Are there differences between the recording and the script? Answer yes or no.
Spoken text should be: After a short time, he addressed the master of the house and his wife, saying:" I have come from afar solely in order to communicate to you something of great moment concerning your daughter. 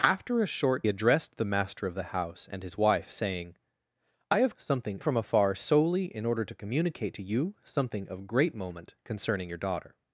yes